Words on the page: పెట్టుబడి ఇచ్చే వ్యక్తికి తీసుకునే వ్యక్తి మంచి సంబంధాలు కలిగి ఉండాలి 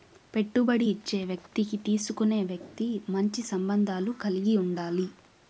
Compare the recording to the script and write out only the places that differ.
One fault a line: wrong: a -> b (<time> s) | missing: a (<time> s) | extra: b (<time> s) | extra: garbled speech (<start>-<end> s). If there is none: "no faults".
no faults